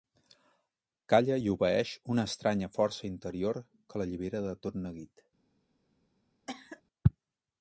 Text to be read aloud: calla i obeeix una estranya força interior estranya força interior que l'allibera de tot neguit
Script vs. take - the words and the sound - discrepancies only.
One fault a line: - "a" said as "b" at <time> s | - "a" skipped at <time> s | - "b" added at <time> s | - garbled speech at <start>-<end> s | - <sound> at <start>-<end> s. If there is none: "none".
- "estranya força interior" skipped at 3.6 s
- cough at 6.5-6.8 s